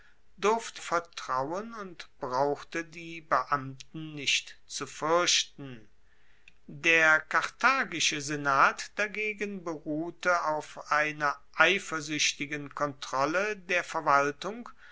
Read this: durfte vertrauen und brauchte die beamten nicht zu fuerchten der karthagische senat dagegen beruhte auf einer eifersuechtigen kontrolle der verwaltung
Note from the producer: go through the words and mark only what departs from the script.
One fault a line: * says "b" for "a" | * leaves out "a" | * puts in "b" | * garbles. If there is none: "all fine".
all fine